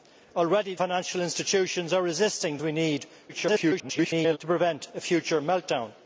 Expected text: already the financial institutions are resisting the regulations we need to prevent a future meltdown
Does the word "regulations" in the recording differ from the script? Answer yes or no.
yes